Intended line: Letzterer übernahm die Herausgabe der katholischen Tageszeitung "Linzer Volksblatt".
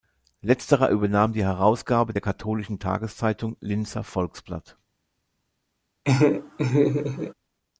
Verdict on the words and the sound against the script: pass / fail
fail